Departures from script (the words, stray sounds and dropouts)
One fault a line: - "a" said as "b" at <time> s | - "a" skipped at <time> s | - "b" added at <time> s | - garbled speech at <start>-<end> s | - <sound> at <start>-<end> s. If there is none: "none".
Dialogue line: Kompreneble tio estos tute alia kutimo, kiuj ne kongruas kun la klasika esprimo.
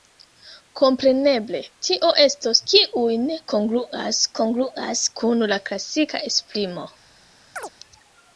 - "tute alia kutimo" skipped at 2.6 s
- "kongruas" added at 4.4 s
- chirp at 7.6-7.7 s